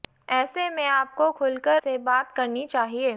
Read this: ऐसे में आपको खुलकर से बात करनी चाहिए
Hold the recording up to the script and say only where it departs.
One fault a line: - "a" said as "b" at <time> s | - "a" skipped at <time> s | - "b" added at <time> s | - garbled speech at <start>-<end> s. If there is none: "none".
none